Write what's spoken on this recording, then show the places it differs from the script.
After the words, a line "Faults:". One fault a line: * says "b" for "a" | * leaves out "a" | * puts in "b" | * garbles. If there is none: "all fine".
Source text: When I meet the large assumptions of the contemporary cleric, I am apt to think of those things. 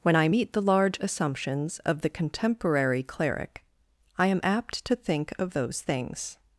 When I meet the large assumptions of the contemporary cleric, I am apt to think of those things.
Faults:
all fine